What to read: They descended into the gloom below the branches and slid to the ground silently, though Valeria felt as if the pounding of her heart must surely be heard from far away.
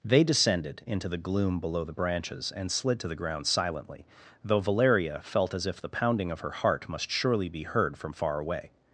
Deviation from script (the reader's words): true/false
false